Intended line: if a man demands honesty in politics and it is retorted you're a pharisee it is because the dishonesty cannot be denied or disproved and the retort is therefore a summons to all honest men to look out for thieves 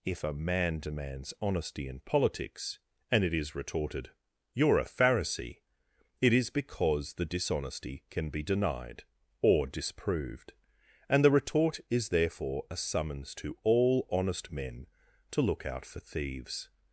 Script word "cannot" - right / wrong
wrong